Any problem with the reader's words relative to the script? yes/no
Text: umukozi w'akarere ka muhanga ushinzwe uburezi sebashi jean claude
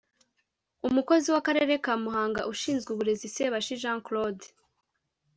no